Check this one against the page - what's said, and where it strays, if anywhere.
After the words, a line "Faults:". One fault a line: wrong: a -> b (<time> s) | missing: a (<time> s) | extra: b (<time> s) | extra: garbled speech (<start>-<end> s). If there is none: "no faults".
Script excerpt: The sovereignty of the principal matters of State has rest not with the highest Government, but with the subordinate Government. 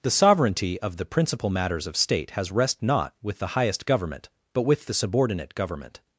The sovereignty of the principal matters of State has rest not with the highest Government, but with the subordinate Government.
Faults:
no faults